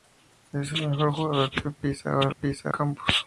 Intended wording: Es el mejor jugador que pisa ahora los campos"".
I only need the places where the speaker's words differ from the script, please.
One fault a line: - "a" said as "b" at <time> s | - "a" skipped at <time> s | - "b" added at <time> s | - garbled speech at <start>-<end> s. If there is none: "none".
- "los" said as "pisa" at 2.3 s